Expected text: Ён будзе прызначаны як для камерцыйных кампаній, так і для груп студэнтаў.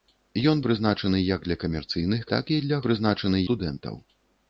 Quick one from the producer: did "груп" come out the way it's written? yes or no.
no